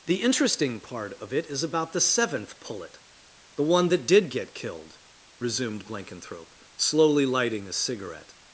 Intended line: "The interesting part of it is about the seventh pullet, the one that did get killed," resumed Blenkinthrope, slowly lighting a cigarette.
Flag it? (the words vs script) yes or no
no